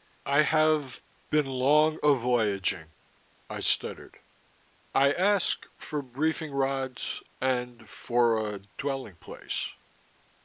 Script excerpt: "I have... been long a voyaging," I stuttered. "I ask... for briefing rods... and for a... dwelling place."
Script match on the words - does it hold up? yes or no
yes